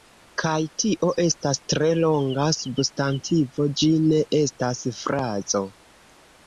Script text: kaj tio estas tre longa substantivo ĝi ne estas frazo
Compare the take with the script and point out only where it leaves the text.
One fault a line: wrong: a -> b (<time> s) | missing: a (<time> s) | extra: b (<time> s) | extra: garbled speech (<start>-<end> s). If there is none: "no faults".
no faults